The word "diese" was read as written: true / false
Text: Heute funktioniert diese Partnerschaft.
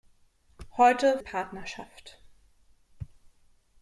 false